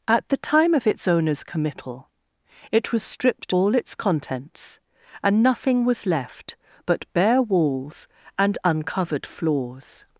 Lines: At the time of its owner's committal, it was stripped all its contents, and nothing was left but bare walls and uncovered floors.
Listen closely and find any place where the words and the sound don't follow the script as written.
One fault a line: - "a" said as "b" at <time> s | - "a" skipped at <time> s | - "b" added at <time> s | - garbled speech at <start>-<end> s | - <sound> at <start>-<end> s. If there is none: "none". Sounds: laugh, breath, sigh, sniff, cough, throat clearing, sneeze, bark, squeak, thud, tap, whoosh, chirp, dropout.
none